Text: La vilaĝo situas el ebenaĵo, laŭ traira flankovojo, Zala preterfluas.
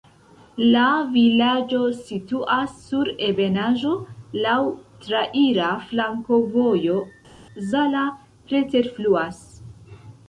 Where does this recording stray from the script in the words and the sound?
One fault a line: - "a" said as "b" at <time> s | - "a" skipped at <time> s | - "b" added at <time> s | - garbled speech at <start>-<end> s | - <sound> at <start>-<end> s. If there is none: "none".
- "el" said as "sur" at 2.9 s